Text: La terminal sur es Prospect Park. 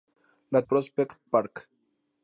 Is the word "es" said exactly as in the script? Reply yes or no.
no